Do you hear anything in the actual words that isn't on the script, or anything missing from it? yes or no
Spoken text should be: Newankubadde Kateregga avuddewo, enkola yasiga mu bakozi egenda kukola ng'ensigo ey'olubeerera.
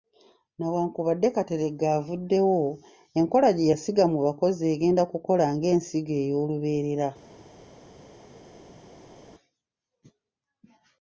yes